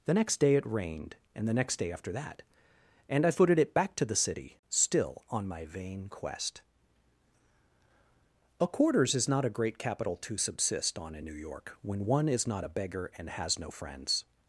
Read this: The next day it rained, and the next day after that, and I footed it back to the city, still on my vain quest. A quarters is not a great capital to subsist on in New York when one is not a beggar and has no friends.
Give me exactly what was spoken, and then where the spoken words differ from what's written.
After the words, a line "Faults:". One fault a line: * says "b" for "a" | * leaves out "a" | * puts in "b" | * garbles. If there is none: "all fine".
The next day it rained, and the next day after that, and I footed it back to the city, still on my vain quest. A quarters is not a great capital to subsist on in New York when one is not a beggar and has no friends.
Faults:
all fine